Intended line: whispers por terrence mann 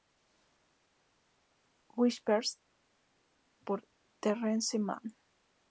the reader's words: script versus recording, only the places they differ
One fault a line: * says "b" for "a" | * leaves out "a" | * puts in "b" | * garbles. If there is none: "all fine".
all fine